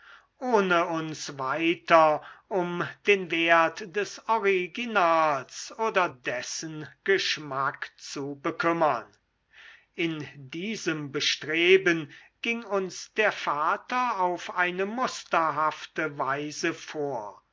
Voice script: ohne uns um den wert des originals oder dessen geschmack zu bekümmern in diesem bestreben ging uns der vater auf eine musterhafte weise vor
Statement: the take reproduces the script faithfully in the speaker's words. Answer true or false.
false